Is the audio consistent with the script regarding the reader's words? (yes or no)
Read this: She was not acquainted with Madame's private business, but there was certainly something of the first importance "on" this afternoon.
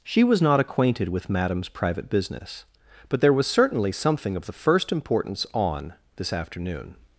yes